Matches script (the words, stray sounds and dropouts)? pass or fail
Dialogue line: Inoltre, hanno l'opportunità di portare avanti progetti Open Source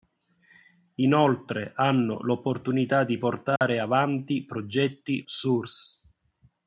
fail